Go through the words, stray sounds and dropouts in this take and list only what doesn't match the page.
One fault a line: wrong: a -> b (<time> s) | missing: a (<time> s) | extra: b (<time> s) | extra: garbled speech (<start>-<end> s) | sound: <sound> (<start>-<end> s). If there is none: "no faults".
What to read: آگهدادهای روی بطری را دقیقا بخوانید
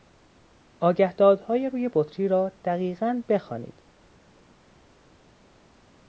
no faults